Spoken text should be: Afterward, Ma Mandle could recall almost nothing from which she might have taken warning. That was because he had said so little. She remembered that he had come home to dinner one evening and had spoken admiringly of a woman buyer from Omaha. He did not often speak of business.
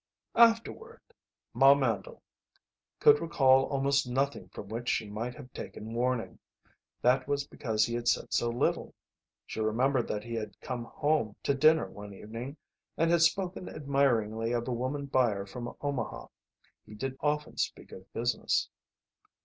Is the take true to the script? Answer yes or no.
no